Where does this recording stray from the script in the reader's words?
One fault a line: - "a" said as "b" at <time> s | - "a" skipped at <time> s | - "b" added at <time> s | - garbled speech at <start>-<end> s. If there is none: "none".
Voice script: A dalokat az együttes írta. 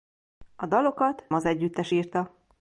none